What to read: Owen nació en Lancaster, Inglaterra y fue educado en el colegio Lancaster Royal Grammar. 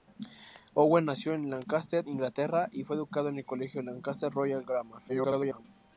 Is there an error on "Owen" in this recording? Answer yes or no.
no